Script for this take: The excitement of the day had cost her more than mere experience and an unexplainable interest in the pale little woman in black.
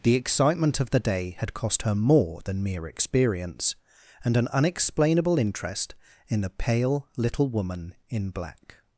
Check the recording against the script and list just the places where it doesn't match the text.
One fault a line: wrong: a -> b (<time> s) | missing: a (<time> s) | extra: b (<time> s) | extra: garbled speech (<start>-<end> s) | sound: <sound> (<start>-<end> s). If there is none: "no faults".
no faults